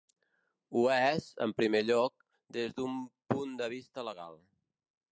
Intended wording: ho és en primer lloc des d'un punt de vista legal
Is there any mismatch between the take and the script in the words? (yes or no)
no